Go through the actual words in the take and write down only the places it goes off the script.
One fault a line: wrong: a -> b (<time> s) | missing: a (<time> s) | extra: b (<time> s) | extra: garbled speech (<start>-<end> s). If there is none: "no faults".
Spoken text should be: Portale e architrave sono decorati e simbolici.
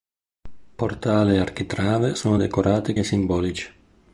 no faults